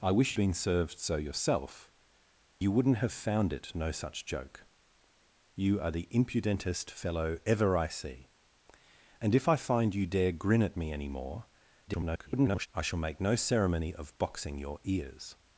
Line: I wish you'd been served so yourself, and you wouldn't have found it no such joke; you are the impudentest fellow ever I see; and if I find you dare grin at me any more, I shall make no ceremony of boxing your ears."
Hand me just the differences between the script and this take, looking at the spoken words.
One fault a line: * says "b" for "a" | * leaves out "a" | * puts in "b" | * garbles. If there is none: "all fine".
* leaves out "you'd"
* leaves out "and"
* garbles